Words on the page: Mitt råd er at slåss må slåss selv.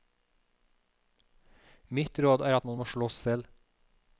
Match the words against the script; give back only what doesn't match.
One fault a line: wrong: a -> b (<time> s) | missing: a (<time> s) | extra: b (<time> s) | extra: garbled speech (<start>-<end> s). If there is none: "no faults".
wrong: slåss -> man (2.7 s)